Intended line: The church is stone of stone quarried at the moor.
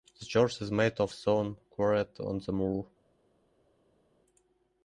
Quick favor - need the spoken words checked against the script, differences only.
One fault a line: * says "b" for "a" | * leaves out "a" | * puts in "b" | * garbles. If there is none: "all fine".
* says "made" for "stone"
* says "on" for "at"